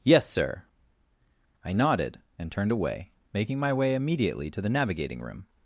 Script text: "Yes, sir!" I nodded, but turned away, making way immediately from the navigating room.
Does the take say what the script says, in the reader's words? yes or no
no